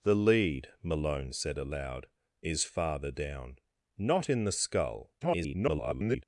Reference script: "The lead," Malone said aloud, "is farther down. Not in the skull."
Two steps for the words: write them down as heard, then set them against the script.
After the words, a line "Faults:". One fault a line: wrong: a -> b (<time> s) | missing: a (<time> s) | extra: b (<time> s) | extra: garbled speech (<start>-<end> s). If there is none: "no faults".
"The lead," Malone said aloud, "is farther down. Not in the skull." [garbled]
Faults:
extra: garbled speech (5.2-6.2 s)